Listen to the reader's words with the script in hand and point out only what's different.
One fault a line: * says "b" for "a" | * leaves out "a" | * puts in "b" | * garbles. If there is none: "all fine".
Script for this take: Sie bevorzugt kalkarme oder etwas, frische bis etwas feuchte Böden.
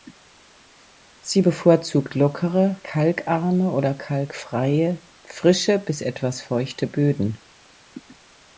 * puts in "lockere"
* says "kalkfreie" for "etwas"